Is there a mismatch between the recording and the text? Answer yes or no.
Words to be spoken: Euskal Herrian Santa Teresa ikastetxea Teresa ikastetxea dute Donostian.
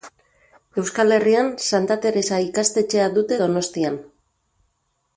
yes